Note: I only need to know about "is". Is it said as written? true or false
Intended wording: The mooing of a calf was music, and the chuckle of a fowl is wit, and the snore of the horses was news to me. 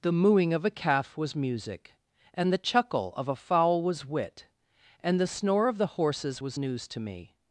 false